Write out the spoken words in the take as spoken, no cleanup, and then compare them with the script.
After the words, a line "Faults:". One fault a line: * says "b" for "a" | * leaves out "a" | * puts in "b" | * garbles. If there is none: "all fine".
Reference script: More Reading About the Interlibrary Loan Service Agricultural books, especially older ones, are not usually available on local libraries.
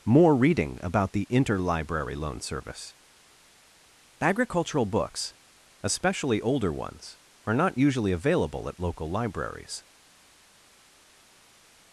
More Reading About the Interlibrary Loan Service Agricultural books, especially older ones, are not usually available at local libraries.
Faults:
* says "at" for "on"